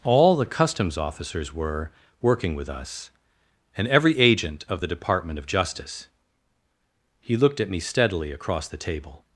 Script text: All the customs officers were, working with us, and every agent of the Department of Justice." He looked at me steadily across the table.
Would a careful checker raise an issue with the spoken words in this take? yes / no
no